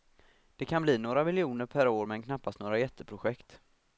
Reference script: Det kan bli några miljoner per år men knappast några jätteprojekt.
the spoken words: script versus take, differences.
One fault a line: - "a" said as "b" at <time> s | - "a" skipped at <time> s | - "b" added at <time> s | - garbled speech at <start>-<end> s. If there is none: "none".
none